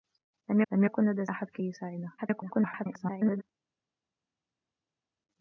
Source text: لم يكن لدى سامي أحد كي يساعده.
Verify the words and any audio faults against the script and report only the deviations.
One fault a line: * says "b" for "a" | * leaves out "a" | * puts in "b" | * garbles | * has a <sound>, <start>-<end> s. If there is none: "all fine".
* puts in "لم"
* leaves out "سامي"
* garbles